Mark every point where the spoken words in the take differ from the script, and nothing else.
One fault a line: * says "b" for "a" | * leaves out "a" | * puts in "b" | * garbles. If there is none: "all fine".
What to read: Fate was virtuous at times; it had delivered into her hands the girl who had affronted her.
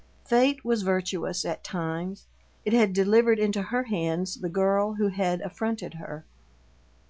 all fine